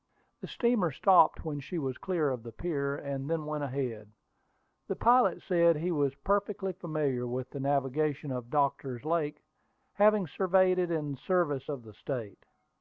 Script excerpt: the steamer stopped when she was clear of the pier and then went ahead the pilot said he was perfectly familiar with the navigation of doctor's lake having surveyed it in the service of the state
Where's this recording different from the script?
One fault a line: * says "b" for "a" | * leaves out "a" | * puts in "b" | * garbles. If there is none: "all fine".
all fine